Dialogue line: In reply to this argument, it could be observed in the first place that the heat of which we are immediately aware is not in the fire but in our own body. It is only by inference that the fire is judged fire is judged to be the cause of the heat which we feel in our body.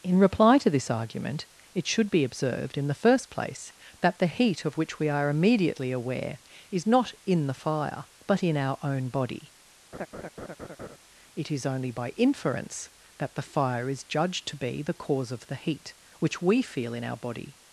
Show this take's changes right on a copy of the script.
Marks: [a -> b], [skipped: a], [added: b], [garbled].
In reply to this argument, it [could -> should] be observed in the first place that the heat of which we are immediately aware is not in the fire but in our own body. It is only by inference that the fire is judged [skipped: fire is judged] to be the cause of the heat which we feel in our body.